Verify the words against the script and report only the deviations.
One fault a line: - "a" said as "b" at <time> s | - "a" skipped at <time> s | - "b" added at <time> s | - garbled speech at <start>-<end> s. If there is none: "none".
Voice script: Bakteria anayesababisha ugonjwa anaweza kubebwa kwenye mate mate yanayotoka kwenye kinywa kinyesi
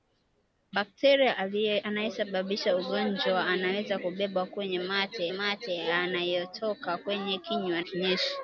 none